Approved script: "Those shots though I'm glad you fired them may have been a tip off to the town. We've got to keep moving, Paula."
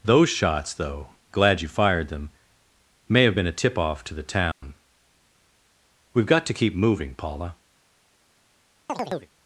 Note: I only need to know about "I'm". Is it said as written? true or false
false